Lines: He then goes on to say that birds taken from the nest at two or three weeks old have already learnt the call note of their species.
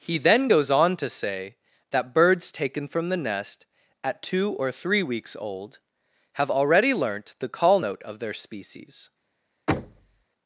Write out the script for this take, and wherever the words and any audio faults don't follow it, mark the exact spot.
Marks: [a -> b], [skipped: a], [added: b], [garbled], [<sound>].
He then goes on to say that birds taken from the nest at two or three weeks old have already learnt the call note of their species. [thud]